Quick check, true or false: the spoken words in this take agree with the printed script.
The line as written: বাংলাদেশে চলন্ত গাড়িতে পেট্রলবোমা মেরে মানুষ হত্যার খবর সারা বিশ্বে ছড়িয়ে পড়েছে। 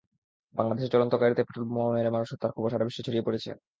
true